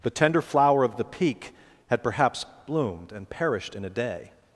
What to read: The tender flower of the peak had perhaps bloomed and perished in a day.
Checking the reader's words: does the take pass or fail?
pass